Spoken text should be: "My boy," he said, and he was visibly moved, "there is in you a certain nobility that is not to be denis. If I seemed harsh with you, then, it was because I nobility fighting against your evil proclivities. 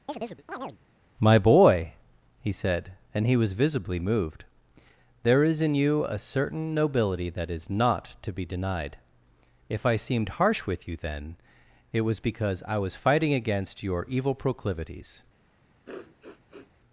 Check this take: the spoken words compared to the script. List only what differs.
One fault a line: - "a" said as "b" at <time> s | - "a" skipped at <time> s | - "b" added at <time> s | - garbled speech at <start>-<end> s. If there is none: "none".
- "denis" said as "denied" at 8.5 s
- "nobility" said as "was" at 12.8 s